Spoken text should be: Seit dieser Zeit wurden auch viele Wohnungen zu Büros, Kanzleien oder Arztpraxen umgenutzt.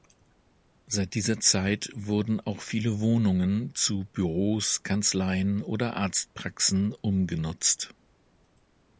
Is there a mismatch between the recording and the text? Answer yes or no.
no